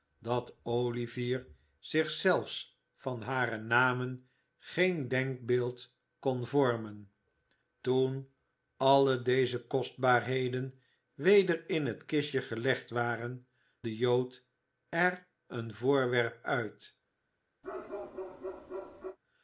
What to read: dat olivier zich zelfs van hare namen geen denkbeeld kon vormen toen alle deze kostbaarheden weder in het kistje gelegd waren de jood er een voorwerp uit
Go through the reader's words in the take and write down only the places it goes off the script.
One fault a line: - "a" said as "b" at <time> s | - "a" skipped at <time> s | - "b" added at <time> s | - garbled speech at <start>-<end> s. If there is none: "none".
none